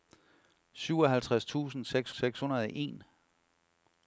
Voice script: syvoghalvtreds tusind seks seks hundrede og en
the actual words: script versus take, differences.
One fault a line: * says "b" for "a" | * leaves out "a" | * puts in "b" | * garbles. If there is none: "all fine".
all fine